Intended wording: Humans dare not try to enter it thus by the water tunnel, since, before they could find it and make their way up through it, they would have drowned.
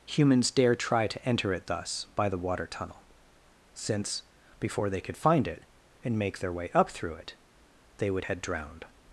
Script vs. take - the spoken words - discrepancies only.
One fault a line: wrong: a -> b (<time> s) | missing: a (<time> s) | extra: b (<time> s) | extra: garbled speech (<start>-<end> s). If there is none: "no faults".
missing: not (0.8 s)
wrong: have -> had (8.2 s)